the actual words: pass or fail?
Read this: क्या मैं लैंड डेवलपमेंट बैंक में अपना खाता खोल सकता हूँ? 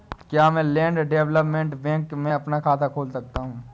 pass